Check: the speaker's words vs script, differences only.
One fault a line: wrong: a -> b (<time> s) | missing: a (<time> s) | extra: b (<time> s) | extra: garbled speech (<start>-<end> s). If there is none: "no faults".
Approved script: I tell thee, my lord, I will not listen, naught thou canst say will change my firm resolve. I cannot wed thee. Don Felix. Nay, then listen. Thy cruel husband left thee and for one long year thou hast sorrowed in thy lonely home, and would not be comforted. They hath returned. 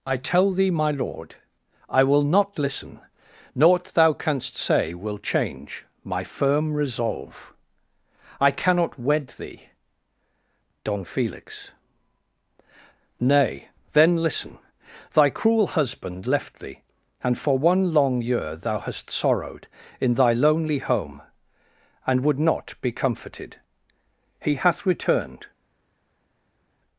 wrong: They -> He (24.4 s)